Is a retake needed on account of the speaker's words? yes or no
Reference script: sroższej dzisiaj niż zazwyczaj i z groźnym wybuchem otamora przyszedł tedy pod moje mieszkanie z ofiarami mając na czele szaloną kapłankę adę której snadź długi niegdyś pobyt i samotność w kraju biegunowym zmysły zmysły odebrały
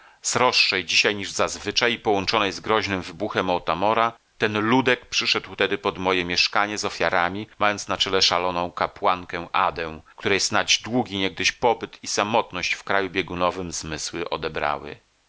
yes